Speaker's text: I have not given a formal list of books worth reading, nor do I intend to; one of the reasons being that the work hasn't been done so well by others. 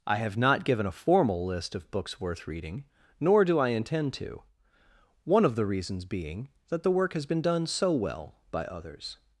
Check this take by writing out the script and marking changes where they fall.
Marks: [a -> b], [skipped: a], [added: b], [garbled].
I have not given a formal list of books worth reading, nor do I intend to; one of the reasons being that the work [hasn't -> has] been done so well by others.